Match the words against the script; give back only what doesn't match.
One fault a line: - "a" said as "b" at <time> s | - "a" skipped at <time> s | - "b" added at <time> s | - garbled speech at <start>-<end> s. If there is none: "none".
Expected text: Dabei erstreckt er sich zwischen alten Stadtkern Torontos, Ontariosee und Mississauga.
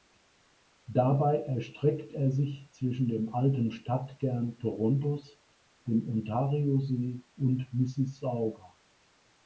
- "dem" added at 3.1 s
- "dem" added at 5.8 s